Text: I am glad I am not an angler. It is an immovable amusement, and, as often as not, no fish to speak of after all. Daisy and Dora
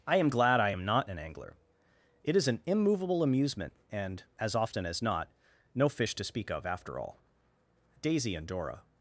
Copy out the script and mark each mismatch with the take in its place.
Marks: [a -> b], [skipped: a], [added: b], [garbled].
I am glad I am not an angler. It is an immovable amusement, and, as often as not, no fish to speak of after all. Daisy and Dora